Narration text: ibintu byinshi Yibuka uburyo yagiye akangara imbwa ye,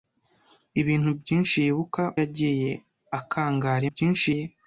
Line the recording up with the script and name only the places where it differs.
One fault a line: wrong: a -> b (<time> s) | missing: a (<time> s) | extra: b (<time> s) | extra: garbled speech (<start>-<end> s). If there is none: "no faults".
missing: uburyo (2.0 s)
wrong: imbwa -> byinshi (3.9 s)